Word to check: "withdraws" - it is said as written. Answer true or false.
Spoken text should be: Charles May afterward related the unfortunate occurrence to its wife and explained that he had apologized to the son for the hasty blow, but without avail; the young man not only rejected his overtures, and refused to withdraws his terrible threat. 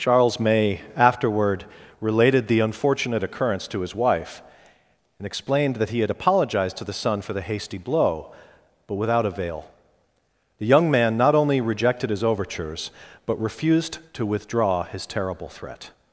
false